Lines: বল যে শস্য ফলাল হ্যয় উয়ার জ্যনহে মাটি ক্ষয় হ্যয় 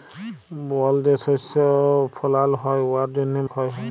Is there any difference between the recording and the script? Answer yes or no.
yes